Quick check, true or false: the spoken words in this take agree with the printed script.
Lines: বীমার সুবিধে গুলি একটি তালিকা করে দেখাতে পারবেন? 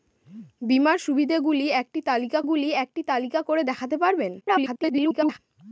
false